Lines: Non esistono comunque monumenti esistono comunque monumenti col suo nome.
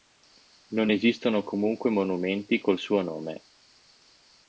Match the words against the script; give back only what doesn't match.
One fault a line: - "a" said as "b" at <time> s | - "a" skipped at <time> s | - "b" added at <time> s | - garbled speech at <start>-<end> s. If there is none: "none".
- "esistono comunque monumenti" skipped at 2.6 s